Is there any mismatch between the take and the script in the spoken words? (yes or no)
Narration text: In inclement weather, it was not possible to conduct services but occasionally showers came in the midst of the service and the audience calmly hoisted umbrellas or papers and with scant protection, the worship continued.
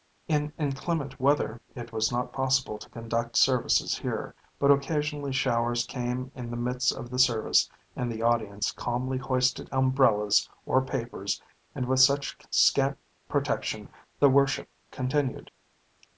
yes